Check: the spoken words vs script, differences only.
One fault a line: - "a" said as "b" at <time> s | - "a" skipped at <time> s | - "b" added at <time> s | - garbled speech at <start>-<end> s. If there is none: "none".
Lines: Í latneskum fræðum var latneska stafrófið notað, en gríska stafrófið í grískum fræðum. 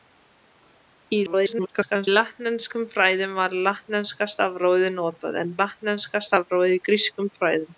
- garbled speech at 1.3-2.1 s
- "gríska" said as "latneska" at 5.6 s